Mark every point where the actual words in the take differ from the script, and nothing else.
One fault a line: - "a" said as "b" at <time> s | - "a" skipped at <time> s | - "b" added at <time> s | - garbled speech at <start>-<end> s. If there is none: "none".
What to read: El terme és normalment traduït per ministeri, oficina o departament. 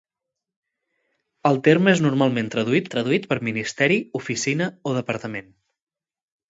- "traduït" added at 3.0 s